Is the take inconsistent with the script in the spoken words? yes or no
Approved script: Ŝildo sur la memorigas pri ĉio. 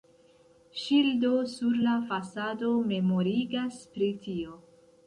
yes